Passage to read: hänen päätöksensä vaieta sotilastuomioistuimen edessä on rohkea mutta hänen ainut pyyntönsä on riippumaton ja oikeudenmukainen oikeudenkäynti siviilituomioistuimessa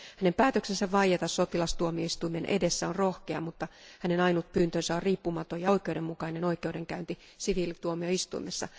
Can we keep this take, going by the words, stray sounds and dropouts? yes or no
yes